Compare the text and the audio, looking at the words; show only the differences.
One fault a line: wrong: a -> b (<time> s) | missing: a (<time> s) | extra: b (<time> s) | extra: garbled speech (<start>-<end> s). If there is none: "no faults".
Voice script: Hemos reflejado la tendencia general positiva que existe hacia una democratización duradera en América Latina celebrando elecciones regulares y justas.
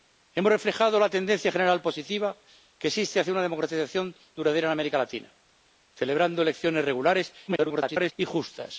extra: garbled speech (7.5-8.1 s)